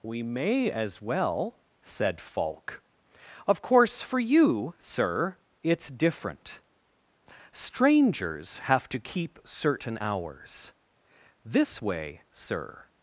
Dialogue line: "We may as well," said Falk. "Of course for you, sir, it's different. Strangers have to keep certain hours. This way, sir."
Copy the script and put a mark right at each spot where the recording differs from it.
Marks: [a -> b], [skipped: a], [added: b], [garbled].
"We may as well," said Falk. "Of course for you, sir, it's different. Strangers have to keep certain hours. This way, sir."